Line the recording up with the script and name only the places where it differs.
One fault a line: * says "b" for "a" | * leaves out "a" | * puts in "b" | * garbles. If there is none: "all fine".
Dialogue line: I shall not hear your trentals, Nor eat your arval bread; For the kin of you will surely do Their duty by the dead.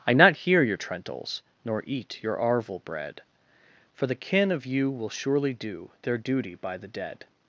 * leaves out "shall"